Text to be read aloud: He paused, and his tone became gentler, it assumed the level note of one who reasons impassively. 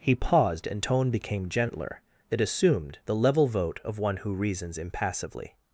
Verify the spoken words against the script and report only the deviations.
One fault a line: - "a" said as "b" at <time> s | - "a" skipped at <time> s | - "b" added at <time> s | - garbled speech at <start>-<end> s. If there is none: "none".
- "his" skipped at 0.8 s
- "note" said as "vote" at 3.5 s